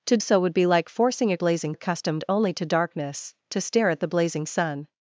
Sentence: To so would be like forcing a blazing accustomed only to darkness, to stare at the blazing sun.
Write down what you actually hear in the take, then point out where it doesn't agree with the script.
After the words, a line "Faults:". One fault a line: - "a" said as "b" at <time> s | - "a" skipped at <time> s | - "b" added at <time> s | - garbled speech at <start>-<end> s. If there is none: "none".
To so would be like forcing a blazing accustomed only to darkness, to stare at the blazing sun.
Faults:
none